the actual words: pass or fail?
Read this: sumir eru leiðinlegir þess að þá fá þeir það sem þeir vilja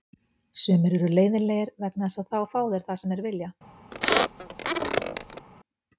fail